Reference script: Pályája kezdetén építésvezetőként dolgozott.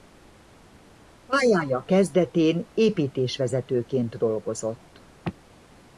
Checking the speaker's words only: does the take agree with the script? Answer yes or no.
yes